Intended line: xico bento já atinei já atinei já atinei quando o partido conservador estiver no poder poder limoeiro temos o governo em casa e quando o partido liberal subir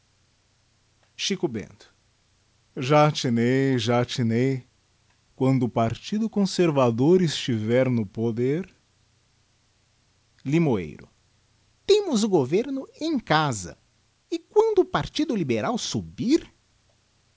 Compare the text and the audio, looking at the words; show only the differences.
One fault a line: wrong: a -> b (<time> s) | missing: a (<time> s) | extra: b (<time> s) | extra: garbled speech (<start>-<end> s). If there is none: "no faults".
missing: já atinei (4.7 s)
missing: poder (8.7 s)